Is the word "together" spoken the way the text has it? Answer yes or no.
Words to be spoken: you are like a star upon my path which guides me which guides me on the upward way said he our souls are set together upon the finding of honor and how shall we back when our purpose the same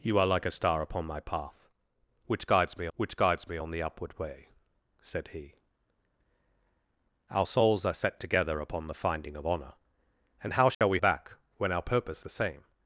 yes